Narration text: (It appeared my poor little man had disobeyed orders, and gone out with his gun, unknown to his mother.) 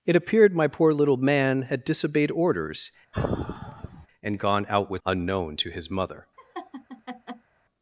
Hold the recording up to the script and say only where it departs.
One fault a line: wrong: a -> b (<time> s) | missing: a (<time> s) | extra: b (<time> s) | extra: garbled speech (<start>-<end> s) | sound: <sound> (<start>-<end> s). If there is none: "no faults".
sound: sigh (3.1-4.1 s)
missing: his gun (5.0 s)
sound: laugh (6.4-7.5 s)